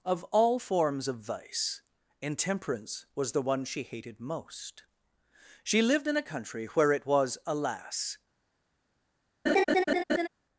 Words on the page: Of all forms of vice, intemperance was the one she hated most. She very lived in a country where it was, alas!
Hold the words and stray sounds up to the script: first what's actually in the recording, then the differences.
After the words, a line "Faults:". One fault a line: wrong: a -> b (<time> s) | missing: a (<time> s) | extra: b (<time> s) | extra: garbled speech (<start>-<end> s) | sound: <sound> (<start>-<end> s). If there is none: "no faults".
Of all forms of vice, intemperance was the one she hated most. She lived in a country where it was, alas!
Faults:
missing: very (5.8 s)
sound: laugh (9.5-10.3 s)